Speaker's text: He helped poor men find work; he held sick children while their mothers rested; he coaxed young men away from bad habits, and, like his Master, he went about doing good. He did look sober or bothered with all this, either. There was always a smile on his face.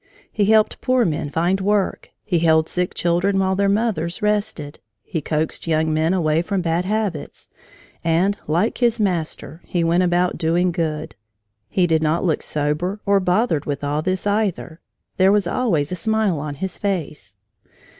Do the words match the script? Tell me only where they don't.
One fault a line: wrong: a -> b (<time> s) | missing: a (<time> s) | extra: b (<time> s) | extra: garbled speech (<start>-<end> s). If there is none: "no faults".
extra: not (12.0 s)